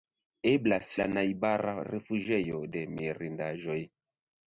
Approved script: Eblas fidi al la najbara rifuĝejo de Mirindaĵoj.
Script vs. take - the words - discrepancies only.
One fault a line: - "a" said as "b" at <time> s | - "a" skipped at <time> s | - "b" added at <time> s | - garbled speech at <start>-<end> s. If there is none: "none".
- "fidi al" skipped at 0.9 s